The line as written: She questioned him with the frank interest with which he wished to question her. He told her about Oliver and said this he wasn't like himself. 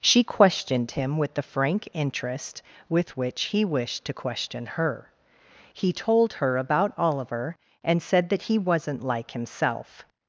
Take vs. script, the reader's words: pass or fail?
fail